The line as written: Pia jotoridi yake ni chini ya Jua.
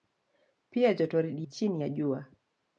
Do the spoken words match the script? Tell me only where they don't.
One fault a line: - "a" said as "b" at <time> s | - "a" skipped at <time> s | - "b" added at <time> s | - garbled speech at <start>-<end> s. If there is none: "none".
- "yake ni" skipped at 1.5 s